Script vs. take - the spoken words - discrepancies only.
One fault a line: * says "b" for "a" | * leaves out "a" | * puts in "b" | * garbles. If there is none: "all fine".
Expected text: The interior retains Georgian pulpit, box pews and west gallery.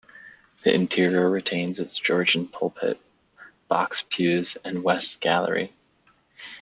* puts in "its"